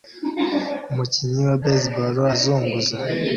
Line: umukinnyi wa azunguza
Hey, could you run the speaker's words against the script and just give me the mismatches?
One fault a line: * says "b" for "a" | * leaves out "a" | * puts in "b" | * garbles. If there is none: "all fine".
* puts in "baseball"